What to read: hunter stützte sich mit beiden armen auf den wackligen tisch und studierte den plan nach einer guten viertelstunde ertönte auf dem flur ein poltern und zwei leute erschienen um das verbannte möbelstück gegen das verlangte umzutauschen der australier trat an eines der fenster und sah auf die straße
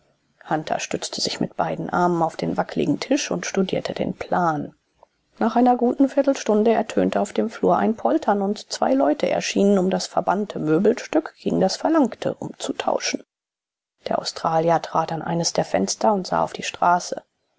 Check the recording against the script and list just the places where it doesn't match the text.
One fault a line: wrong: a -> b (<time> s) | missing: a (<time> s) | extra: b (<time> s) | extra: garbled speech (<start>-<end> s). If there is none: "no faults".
no faults